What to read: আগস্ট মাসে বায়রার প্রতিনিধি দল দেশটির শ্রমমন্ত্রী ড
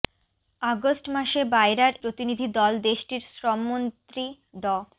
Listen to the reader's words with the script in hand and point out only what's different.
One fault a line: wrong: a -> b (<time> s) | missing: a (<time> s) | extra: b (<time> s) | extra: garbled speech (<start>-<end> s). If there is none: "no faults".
no faults